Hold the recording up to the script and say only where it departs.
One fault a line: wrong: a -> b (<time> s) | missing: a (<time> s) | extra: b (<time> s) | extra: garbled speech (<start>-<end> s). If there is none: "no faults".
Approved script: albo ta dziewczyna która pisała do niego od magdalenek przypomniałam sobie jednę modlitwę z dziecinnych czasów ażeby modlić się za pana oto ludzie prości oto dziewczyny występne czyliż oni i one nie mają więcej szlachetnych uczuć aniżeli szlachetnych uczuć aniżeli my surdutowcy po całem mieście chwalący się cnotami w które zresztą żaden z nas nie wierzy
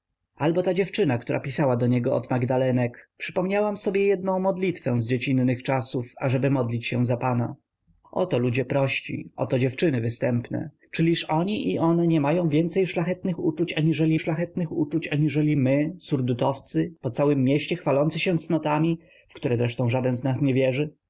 no faults